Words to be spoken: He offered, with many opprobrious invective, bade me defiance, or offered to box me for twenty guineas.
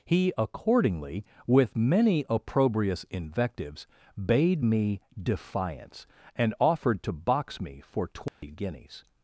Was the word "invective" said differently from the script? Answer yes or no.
yes